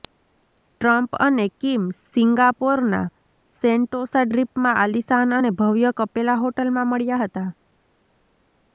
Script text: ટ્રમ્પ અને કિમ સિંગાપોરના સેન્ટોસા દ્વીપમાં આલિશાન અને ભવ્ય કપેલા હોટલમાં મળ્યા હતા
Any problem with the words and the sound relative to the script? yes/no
no